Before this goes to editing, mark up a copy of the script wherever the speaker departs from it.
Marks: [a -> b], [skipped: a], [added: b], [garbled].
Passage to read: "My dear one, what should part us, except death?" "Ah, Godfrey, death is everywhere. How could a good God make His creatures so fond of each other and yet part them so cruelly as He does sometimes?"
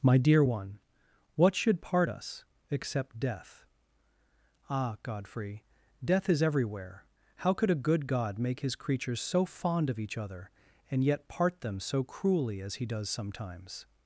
"My dear one, what should part us, except death?" "Ah, Godfrey, death is everywhere. How could a good God make His creatures so fond of each other and yet part them so cruelly as He does sometimes?"